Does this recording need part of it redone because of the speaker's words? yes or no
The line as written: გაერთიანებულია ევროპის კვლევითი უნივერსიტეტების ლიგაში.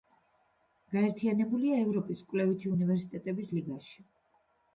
no